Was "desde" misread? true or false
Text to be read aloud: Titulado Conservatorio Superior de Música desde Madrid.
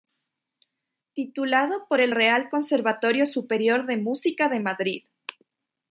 true